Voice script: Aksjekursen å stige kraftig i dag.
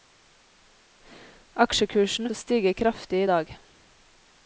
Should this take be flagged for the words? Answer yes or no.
no